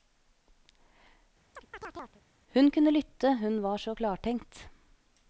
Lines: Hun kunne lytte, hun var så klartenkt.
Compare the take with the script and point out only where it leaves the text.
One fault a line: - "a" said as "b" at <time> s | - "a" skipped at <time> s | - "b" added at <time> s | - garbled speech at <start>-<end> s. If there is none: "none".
none